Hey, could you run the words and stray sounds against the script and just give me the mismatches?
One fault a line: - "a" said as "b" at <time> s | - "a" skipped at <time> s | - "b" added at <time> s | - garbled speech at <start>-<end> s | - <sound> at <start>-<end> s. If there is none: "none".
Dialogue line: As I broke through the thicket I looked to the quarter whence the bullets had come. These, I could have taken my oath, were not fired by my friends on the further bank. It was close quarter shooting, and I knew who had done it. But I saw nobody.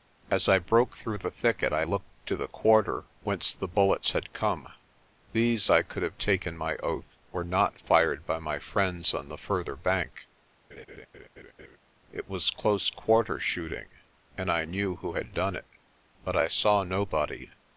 - laugh at 10.7-11.8 s